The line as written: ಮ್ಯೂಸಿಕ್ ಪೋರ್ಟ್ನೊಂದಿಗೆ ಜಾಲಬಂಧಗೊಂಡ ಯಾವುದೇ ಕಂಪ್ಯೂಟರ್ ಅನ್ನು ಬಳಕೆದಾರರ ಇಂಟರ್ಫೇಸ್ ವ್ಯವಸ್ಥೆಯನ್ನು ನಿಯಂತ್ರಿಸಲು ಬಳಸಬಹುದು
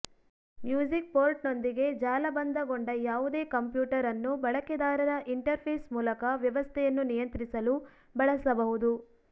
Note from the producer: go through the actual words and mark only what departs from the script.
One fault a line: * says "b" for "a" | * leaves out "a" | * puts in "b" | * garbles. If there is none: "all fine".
* puts in "ಮೂಲಕ"